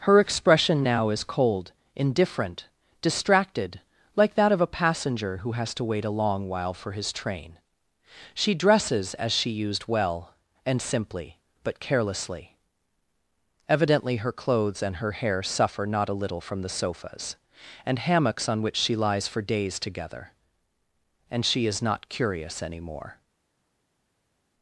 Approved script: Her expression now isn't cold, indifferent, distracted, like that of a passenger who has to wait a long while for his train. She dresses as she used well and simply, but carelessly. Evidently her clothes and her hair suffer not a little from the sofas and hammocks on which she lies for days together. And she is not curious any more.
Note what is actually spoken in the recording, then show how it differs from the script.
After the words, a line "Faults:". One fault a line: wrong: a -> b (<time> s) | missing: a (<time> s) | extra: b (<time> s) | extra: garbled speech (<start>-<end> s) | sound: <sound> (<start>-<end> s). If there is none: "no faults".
Her expression now is cold, indifferent, distracted, like that of a passenger who has to wait a long while for his train. She dresses as she used well and simply, but carelessly. Evidently her clothes and her hair suffer not a little from the sofas and hammocks on which she lies for days together. And she is not curious any more.
Faults:
wrong: isn't -> is (1.1 s)